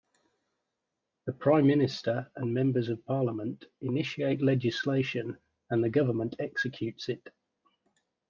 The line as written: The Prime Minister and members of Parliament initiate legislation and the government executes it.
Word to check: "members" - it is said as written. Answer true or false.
true